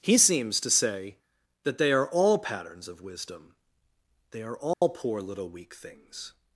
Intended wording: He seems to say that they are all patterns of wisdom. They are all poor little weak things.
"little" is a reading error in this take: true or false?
false